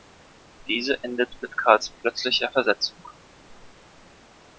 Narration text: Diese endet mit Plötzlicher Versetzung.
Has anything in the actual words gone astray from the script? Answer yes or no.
yes